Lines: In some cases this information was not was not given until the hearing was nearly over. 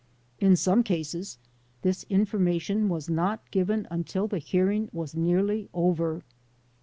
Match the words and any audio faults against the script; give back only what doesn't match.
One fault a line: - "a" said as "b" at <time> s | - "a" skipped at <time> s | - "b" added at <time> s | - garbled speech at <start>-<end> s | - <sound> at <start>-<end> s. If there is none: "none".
- "was not" skipped at 3.5 s